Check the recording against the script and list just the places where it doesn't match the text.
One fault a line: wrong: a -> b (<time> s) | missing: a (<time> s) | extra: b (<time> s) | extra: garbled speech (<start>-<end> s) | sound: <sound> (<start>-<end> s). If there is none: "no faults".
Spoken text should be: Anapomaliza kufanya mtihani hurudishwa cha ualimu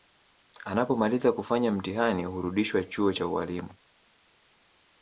extra: chuo (2.8 s)